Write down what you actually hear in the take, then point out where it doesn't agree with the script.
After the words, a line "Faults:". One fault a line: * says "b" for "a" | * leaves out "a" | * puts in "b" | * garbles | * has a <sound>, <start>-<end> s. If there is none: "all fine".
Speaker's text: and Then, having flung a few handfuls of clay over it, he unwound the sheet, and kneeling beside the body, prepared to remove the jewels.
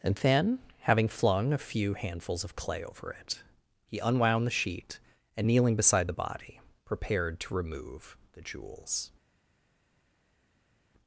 and Then, having flung a few handfuls of clay over it, he unwound the sheet, and kneeling beside the body, prepared to remove the jewels.
Faults:
all fine